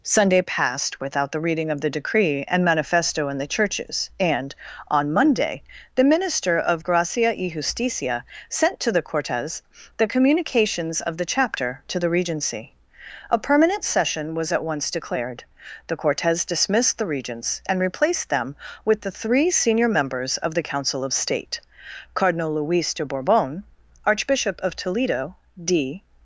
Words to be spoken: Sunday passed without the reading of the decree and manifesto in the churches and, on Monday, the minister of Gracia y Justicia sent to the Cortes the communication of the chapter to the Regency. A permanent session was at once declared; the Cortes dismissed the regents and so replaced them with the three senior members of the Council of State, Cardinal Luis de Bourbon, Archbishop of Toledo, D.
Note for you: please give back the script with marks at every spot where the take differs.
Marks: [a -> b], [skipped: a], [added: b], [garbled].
Sunday passed without the reading of the decree and manifesto in the churches and, on Monday, the minister of Gracia y Justicia sent to the Cortes the [communication -> communications] of the chapter to the Regency. A permanent session was at once declared; the Cortes dismissed the regents and [skipped: so] replaced them with the three senior members of the Council of State, Cardinal Luis de Bourbon, Archbishop of Toledo, D.